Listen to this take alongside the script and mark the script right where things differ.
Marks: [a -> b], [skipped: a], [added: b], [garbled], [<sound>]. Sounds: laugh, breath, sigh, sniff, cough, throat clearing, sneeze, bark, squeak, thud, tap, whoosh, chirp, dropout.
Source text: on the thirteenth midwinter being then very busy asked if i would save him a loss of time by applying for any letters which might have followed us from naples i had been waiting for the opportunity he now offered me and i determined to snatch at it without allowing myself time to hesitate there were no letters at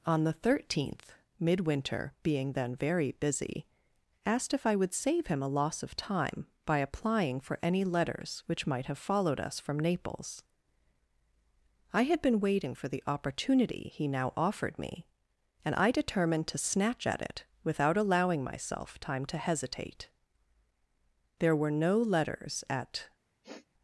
on the thirteenth midwinter being then very busy asked if i would save him a loss of time by applying for any letters which might have followed us from naples i had been waiting for the opportunity he now offered me and i determined to snatch at it without allowing myself time to hesitate there were no letters at [sniff]